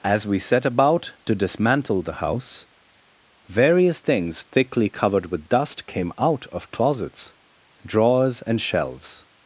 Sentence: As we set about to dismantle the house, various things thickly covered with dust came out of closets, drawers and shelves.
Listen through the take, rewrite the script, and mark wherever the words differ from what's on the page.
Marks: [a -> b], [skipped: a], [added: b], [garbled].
As we set about to dismantle the house, various things thickly covered with dust came out of closets, drawers and shelves.